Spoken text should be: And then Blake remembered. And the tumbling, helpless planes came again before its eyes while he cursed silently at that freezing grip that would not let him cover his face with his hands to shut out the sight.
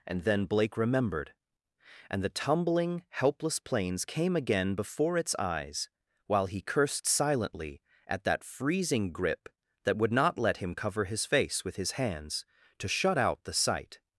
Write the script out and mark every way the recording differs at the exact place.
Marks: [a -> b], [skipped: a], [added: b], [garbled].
And then Blake remembered. And the tumbling, helpless planes came again before its eyes while he cursed silently at that freezing grip that would not let him cover his face with his hands to shut out the sight.